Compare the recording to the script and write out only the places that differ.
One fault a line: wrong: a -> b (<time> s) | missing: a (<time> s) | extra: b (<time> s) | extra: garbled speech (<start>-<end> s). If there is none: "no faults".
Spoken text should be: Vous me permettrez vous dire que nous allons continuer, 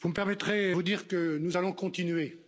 no faults